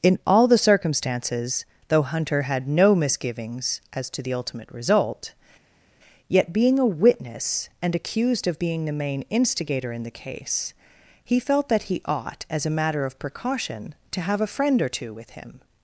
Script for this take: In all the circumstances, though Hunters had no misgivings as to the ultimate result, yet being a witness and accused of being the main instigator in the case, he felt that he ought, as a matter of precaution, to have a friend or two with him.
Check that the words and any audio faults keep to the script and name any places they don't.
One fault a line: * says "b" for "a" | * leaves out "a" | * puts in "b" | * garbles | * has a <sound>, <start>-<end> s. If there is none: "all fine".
* says "Hunter" for "Hunters"